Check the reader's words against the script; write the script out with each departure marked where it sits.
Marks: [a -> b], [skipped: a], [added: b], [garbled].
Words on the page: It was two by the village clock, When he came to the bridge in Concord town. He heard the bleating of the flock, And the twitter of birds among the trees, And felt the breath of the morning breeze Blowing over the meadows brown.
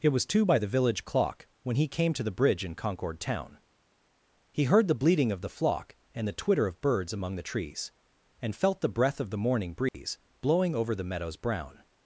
It was two by the village clock, When he came to the bridge in Concord town. He heard the bleating of the flock, And the twitter of birds among the trees, And felt the breath of the morning breeze Blowing over the meadows brown.